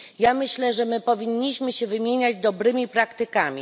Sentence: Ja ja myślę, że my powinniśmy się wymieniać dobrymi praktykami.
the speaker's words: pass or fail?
fail